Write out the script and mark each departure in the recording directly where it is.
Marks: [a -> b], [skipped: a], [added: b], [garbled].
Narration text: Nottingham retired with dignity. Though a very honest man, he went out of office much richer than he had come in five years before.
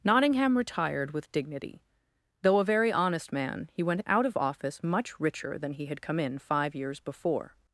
Nottingham retired with dignity. Though a very honest man, he went out of office much richer than he had come in five years before.